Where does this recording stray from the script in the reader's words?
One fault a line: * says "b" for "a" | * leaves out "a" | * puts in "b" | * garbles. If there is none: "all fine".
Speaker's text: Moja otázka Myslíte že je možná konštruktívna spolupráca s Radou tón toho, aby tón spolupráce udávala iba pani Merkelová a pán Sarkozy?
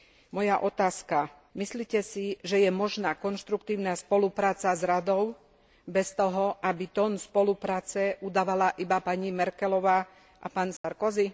* puts in "si"
* says "bez" for "tón"